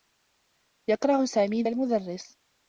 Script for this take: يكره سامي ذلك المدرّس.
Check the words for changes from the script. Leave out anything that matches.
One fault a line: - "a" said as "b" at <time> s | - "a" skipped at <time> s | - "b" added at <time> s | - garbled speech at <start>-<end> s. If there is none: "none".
- "ذلك" skipped at 1.6 s